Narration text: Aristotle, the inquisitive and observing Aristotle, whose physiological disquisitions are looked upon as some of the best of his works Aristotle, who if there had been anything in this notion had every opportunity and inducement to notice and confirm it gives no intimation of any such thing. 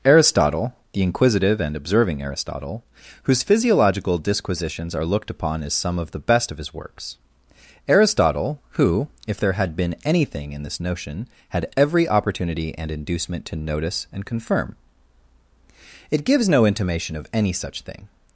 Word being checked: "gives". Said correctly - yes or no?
yes